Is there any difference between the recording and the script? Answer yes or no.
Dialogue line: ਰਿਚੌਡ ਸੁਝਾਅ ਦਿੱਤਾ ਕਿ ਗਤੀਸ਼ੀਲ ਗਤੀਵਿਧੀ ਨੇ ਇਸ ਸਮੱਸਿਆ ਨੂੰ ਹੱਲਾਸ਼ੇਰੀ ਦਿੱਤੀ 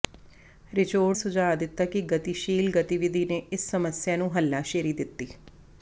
no